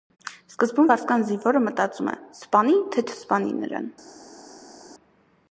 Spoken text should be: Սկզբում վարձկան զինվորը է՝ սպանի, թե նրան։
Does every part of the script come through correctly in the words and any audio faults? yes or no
no